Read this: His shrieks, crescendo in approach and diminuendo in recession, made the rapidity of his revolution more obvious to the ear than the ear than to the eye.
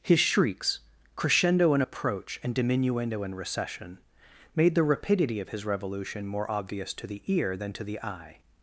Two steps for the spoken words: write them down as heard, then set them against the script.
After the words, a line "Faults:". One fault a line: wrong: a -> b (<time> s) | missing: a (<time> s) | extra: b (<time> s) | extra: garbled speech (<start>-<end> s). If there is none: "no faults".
His shrieks, crescendo in approach and diminuendo in recession, made the rapidity of his revolution more obvious to the ear than to the eye.
Faults:
missing: the ear than (7.7 s)